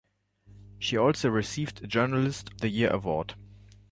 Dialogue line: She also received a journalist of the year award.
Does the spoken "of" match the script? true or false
false